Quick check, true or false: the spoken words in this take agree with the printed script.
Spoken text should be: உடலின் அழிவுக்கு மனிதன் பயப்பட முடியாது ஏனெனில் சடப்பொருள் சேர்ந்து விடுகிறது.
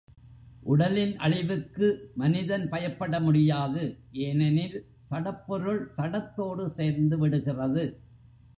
false